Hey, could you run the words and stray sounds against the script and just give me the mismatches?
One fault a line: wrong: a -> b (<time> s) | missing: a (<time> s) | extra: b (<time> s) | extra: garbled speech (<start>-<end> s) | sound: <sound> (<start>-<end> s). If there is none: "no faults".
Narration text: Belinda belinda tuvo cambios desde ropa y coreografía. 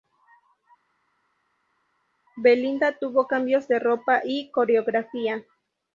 missing: belinda (3.0 s)
wrong: desde -> de (3.7 s)